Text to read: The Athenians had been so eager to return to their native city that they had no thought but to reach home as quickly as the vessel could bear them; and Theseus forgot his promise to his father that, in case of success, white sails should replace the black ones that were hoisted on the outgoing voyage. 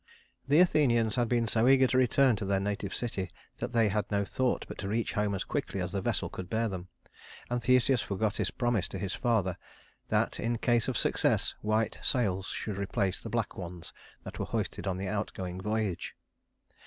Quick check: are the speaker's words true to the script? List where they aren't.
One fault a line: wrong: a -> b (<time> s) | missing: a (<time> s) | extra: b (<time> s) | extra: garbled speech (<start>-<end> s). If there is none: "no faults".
no faults